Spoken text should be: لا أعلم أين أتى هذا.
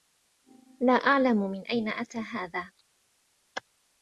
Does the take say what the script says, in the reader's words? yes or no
no